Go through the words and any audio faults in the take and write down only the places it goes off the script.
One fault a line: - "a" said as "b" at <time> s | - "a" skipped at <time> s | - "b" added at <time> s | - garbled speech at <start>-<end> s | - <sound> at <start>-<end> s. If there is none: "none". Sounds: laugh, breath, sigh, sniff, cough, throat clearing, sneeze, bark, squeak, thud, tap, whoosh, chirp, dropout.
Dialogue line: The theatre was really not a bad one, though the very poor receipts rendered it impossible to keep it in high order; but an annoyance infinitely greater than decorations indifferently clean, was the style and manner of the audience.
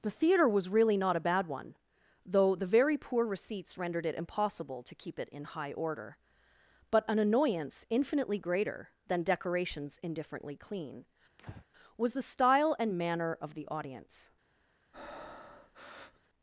- breath at 11.4-11.7 s
- breath at 14.9-16.3 s